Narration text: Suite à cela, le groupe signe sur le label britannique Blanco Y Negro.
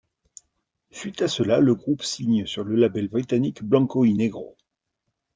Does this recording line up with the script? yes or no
yes